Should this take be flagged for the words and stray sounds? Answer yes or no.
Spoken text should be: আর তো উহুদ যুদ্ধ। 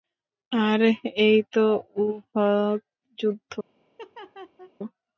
yes